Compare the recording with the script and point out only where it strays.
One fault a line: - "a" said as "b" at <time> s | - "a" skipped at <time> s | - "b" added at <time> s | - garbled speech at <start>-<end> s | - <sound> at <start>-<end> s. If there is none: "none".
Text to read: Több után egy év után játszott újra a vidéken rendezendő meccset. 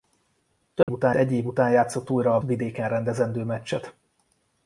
- dropout at 0.8-0.9 s